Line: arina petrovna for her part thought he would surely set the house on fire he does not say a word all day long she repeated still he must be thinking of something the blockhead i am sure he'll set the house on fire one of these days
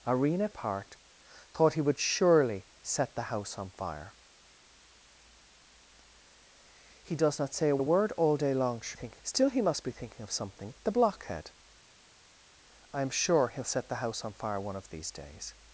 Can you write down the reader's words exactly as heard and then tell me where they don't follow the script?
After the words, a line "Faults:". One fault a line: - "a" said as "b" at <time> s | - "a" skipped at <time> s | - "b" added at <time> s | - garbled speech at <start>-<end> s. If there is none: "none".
arina part thought he would surely set the house on fire he does not say a a word all day long she thinking still he must be thinking of something the blockhead i am sure he'll set the house on fire one of these days
Faults:
- "petrovna for her" skipped at 0.5 s
- "a" added at 7.8 s
- "repeated" said as "thinking" at 8.9 s